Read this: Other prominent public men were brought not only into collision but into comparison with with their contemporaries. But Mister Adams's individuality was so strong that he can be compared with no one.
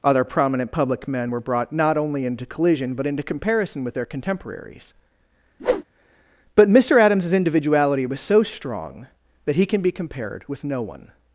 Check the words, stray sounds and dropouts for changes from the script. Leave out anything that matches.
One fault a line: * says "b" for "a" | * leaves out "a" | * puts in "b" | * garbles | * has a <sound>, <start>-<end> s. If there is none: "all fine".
* leaves out "with"
* has a whoosh, 5.6-5.8 s